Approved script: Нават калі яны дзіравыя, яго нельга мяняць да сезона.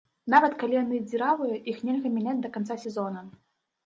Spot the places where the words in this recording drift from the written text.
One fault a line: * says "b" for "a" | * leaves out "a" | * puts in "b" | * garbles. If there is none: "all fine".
* says "іх" for "яго"
* puts in "канца"